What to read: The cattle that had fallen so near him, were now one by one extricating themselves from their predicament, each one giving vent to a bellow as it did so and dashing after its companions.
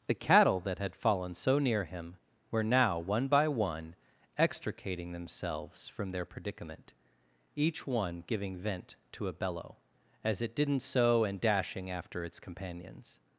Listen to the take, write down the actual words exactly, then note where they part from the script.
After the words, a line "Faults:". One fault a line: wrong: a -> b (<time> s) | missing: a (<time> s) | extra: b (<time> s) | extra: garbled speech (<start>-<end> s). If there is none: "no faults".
The cattle that had fallen so near him, were now one by one extricating themselves from their predicament, each one giving vent to a bellow as it didn't so and dashing after its companions.
Faults:
wrong: did -> didn't (10.6 s)